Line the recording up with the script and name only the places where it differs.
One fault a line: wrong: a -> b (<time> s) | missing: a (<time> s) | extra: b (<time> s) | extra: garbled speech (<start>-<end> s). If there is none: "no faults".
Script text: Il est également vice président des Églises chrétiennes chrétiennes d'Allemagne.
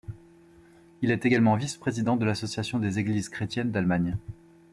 extra: de l'association (2.1 s)
missing: chrétiennes (3.7 s)